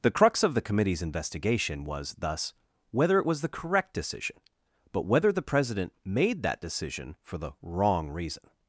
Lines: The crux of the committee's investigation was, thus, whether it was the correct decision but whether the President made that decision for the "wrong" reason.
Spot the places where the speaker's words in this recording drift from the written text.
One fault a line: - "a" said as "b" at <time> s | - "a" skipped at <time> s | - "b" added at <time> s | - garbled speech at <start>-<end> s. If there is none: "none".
none